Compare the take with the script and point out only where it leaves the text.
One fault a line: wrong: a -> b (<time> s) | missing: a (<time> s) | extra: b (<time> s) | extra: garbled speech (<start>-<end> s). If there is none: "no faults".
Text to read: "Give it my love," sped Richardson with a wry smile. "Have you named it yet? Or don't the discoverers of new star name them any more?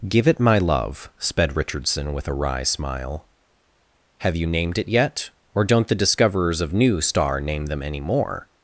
no faults